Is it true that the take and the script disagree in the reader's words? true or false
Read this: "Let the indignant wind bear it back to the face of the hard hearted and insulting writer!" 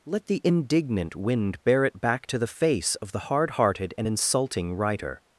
false